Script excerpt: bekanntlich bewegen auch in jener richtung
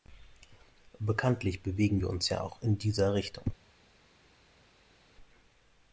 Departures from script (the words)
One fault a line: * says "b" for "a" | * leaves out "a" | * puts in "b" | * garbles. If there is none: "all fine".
* puts in "wir uns ja"
* says "dieser" for "jener"